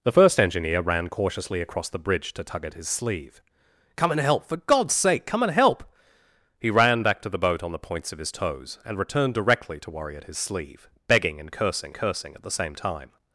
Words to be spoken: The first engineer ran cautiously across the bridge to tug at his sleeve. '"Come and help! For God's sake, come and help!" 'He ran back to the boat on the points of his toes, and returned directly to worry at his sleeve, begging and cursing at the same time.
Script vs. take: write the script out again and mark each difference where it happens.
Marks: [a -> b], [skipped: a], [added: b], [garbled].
The first engineer ran cautiously across the bridge to tug at his sleeve. '"Come and help! For God's sake, come and help!" 'He ran back to the boat on the points of his toes, and returned directly to worry at his sleeve, begging and cursing [added: cursing] at the same time.